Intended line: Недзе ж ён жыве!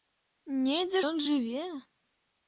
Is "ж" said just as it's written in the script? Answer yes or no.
no